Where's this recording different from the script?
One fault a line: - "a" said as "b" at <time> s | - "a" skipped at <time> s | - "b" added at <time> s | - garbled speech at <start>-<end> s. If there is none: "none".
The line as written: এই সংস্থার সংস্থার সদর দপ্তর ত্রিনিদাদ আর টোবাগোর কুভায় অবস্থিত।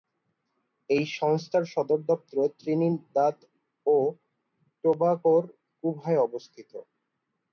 - "সংস্থার" skipped at 1.6 s
- "আর" said as "ও" at 3.9 s